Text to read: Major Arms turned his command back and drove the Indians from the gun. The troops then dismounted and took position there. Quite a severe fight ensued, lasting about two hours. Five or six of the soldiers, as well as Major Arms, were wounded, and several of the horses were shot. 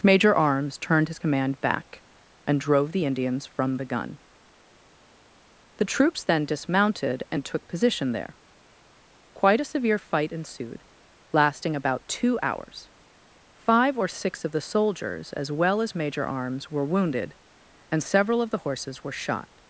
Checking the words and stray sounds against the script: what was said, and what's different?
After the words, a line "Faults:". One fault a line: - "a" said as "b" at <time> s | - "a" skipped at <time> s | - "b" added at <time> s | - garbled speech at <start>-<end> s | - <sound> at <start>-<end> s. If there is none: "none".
Major Arms turned his command back and drove the Indians from the gun. The troops then dismounted and took position there. Quite a severe fight ensued, lasting about two hours. Five or six of the soldiers, as well as Major Arms, were wounded, and several of the horses were shot.
Faults:
none